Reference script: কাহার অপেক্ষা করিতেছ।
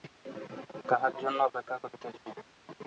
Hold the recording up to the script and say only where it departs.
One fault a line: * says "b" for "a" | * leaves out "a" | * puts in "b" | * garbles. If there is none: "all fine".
* puts in "জন্য"